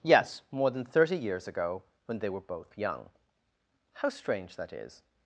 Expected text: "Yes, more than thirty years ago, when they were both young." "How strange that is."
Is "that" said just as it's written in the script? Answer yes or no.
yes